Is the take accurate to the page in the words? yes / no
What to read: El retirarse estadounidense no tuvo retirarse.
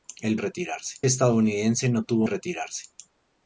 yes